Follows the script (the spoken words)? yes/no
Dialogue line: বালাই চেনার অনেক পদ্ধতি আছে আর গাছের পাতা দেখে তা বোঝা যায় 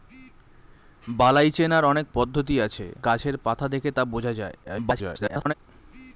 no